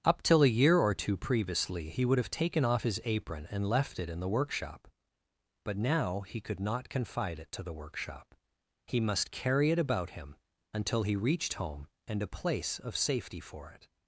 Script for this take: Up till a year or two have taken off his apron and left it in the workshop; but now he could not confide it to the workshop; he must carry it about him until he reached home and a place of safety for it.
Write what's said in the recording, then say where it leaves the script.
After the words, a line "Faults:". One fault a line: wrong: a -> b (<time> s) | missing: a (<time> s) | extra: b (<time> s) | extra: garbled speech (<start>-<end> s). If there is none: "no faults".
Up till a year or two previously he would have taken off his apron and left it in the workshop; but now he could not confide it to the workshop; he must carry it about him until he reached home and a place of safety for it.
Faults:
extra: previously he would (1.1 s)